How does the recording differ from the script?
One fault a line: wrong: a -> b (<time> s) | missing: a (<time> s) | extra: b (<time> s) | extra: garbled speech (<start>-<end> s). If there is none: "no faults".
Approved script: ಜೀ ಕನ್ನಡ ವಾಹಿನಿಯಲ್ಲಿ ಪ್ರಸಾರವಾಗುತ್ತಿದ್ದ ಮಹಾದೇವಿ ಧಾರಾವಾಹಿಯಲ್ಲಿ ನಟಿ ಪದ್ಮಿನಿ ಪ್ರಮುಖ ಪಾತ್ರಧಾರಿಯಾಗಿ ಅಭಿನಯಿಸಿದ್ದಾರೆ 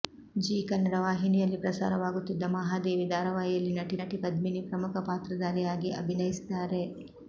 extra: ನಟಿ (4.0 s)